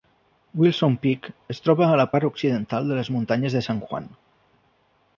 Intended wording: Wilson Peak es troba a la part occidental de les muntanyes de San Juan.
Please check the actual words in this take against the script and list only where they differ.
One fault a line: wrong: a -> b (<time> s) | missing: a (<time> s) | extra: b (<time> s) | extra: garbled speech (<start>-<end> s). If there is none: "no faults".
no faults